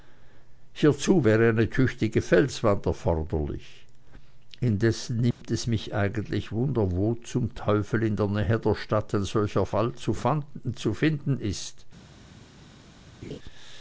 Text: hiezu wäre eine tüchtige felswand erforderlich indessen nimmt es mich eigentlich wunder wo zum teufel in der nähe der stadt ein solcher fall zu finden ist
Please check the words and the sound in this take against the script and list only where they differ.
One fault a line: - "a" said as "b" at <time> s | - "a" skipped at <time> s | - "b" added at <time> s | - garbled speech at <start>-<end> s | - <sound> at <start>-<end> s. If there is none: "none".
- dropout at 5.3-5.4 s
- laugh at 13.2-13.4 s